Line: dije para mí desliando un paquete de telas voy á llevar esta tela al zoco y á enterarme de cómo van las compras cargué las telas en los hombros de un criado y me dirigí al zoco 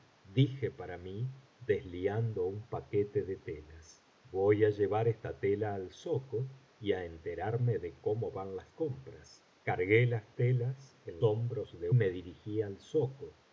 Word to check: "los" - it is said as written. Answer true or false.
false